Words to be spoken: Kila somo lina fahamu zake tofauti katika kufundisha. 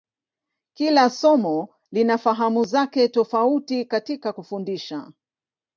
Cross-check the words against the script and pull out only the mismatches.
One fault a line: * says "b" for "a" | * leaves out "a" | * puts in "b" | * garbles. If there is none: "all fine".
all fine